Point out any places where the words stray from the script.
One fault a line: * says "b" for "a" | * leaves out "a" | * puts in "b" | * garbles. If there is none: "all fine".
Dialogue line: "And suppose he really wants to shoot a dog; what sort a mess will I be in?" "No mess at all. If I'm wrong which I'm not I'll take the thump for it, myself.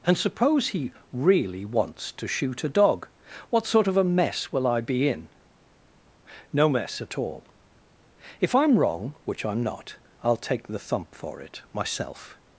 * puts in "of"